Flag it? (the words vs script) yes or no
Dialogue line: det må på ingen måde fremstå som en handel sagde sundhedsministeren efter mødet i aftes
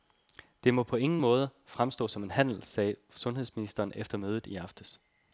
no